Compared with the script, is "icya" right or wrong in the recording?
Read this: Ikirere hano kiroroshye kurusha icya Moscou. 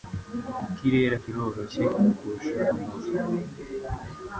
wrong